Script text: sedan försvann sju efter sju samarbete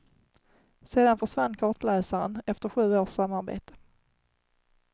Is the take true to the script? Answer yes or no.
no